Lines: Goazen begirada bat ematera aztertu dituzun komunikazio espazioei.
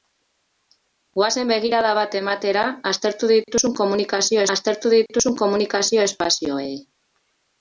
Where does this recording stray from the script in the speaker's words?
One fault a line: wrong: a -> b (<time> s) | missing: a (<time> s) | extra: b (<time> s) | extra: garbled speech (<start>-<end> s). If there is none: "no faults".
extra: aztertu dituzun komunikazio (4.6 s)